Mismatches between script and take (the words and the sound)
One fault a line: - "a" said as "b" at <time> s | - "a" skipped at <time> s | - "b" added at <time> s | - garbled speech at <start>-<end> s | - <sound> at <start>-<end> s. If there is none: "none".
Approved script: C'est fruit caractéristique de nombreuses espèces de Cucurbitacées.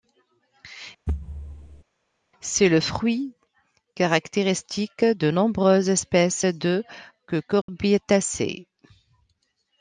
- thud at 1.1-1.8 s
- "le" added at 2.7 s
- dropout at 7.6-7.7 s